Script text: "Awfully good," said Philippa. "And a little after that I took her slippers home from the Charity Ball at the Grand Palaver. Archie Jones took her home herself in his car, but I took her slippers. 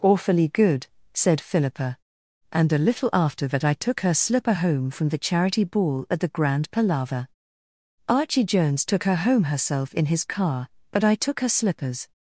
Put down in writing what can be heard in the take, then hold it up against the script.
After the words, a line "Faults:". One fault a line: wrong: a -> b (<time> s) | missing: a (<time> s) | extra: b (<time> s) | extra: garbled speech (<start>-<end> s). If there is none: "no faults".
"Awfully good," said Philippa. "And a little after that I took her slipper home from the Charity Ball at the Grand Palaver. Archie Jones took her home herself in his car, but I took her slippers.
Faults:
wrong: slippers -> slipper (4.1 s)